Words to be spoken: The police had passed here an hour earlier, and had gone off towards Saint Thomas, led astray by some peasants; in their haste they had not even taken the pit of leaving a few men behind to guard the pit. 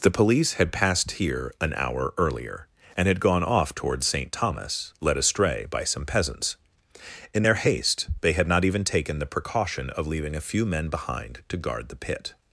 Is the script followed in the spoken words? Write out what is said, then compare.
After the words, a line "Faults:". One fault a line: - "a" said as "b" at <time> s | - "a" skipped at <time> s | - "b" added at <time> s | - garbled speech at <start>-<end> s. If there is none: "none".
The police had passed here an hour earlier, and had gone off towards Saint Thomas, led astray by some peasants; in their haste they had not even taken the precaution of leaving a few men behind to guard the pit.
Faults:
- "pit" said as "precaution" at 9.3 s